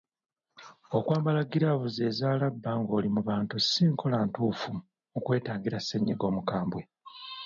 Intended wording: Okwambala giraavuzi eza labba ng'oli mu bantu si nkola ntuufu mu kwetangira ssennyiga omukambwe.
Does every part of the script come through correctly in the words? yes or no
yes